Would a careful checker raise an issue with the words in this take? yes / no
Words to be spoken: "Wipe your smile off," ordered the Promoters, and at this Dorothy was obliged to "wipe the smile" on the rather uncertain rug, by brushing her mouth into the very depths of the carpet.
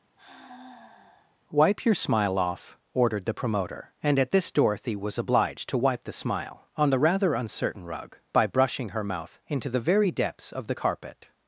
yes